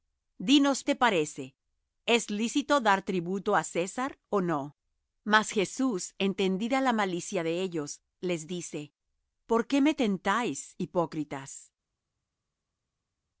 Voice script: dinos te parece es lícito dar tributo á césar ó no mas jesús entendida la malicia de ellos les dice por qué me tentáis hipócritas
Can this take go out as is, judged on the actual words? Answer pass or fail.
pass